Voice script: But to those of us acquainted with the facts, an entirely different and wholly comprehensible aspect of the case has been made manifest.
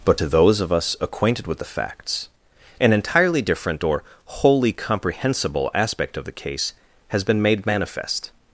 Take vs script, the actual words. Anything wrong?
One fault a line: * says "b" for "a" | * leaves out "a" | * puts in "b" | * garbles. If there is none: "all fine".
* says "or" for "and"